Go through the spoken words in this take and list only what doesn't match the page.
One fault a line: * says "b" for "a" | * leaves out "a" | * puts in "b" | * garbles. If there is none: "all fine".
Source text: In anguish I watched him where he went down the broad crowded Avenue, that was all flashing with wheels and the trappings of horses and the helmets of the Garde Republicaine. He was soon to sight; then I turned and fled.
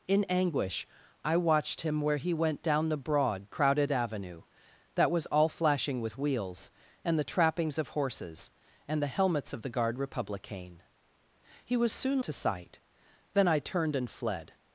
all fine